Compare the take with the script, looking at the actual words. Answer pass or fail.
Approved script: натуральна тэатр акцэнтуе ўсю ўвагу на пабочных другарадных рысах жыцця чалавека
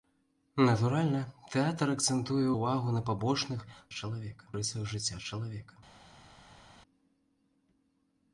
fail